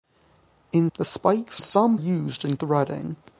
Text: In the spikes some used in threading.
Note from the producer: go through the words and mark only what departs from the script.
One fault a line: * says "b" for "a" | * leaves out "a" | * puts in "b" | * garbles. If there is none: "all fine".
all fine